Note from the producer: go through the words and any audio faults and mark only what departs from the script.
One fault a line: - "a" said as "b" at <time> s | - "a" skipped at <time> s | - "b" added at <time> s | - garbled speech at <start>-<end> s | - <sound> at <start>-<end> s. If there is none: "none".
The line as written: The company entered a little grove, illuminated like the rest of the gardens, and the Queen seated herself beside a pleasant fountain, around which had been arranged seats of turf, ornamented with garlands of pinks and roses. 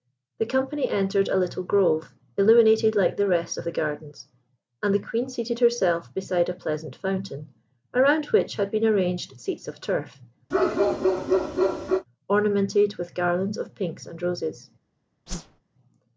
- bark at 10.5-12.1 s
- whoosh at 15.3-15.6 s